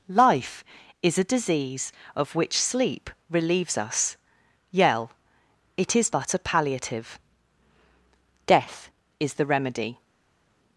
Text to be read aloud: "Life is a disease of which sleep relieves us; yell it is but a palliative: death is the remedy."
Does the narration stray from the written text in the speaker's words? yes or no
no